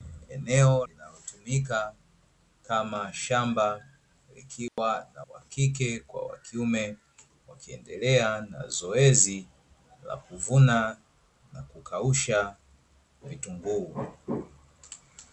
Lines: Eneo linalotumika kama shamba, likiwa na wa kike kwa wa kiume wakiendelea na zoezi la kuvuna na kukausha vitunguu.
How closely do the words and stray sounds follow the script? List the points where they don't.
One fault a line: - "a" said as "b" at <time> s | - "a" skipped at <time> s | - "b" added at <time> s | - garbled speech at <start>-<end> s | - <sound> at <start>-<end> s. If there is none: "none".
- dropout at 4.7-4.8 s